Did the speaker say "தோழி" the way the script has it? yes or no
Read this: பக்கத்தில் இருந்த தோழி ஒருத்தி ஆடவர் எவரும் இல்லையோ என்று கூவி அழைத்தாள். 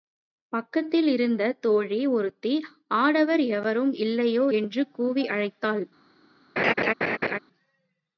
yes